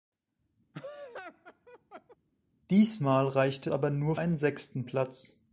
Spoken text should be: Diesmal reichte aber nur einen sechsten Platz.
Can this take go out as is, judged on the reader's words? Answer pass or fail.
pass